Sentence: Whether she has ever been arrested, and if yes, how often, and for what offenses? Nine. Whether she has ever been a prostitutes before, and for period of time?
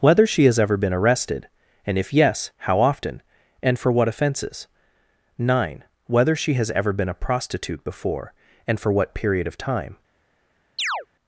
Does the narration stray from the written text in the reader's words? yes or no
yes